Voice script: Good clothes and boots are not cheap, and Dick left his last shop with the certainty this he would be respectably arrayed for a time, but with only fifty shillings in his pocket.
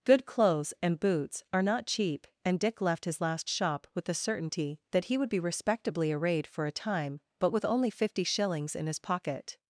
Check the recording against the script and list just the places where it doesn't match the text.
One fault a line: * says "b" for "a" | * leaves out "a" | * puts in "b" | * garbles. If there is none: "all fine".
* says "that" for "this"